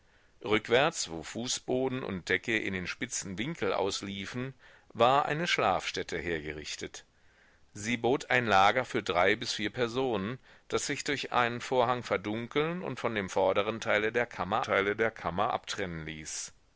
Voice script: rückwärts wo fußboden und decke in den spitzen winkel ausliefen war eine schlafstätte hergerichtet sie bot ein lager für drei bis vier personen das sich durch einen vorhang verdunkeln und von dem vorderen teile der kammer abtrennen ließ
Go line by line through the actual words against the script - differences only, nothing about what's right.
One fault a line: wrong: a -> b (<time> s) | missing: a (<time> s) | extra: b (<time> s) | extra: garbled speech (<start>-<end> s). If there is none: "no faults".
extra: teile der kammer (14.6 s)